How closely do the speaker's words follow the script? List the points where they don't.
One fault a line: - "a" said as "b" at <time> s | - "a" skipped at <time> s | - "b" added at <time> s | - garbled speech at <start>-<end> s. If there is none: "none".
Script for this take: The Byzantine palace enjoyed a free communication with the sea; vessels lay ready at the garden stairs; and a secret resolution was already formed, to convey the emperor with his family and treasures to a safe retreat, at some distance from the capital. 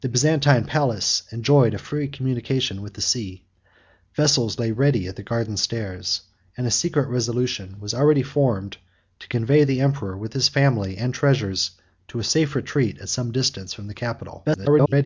- garbled speech at 14.4-15.1 s